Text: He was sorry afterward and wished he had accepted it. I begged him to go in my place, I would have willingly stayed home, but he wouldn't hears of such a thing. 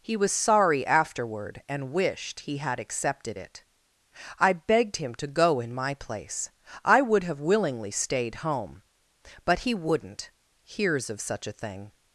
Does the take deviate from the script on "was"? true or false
false